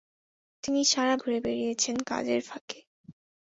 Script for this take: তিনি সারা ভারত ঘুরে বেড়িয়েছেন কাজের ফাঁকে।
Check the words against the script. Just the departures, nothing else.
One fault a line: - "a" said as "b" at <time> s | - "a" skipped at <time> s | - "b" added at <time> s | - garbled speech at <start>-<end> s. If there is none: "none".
- "ভারত" skipped at 1.1 s